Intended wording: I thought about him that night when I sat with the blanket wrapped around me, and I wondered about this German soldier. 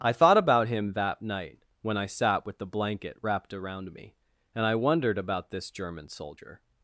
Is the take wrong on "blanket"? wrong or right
right